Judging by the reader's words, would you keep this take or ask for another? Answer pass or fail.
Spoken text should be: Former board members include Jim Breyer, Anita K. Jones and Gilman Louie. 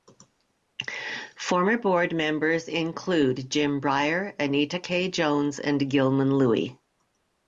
pass